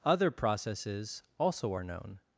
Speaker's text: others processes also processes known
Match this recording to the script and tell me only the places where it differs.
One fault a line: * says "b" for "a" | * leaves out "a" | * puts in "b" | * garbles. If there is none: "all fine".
* says "other" for "others"
* says "are" for "processes"